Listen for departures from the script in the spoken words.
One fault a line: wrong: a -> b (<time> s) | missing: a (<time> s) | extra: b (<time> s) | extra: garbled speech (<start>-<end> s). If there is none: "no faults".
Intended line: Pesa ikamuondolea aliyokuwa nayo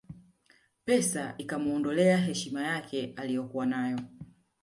extra: heshima yake (2.2 s)